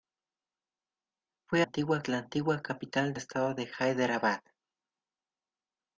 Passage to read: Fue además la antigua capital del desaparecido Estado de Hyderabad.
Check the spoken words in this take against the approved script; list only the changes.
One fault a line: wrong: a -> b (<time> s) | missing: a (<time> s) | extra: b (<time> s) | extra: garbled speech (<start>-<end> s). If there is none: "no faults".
wrong: además -> antigua (1.6 s)
missing: del desaparecido (3.1 s)